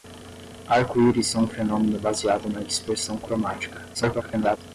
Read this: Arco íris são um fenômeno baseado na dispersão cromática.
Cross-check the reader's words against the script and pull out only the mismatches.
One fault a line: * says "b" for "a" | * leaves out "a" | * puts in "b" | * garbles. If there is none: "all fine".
* garbles